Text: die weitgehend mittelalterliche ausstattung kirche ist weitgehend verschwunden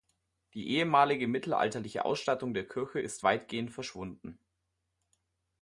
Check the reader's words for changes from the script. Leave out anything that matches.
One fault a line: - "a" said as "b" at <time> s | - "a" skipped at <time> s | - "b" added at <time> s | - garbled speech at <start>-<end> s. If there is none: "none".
- "weitgehend" said as "ehemalige" at 0.7 s
- "der" added at 2.5 s